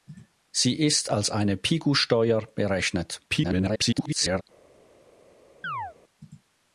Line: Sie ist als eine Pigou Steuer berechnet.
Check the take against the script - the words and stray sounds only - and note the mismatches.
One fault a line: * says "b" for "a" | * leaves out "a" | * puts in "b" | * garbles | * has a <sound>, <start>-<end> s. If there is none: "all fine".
* garbles
* has a chirp, 5.6-5.9 s